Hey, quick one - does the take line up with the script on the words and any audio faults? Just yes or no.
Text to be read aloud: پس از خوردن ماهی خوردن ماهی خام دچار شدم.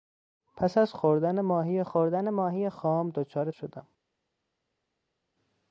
yes